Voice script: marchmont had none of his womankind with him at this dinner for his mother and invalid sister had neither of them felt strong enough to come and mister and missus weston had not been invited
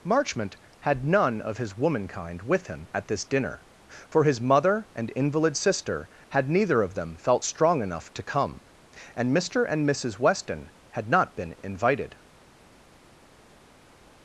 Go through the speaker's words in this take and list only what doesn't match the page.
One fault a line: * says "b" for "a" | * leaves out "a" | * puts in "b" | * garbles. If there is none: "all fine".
all fine